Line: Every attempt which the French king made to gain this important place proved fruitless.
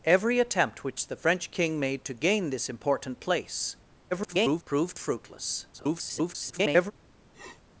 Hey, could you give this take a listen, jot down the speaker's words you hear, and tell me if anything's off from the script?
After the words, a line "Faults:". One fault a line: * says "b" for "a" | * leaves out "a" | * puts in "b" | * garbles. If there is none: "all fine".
Every attempt which the French king made to gain this important place [garbled] proved fruitless. [garbled]
Faults:
* garbles
* garbles